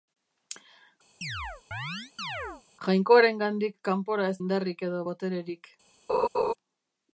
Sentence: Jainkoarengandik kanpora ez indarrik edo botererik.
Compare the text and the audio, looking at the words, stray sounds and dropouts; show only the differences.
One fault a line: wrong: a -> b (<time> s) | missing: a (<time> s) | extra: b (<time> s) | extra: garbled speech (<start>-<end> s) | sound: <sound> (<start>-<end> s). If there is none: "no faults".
sound: chirp (1.2-2.6 s)
sound: laugh (6.1-6.5 s)